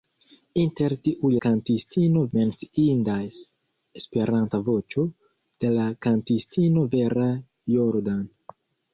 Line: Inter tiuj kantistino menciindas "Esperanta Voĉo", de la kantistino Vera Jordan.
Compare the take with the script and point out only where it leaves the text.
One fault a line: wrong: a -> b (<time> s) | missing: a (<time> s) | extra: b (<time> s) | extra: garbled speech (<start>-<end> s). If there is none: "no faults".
no faults